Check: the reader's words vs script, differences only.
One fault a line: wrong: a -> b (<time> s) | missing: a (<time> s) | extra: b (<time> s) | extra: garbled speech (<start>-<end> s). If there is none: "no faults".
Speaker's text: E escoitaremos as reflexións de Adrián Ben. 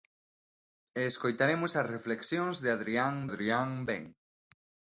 extra: Adrián (3.3 s)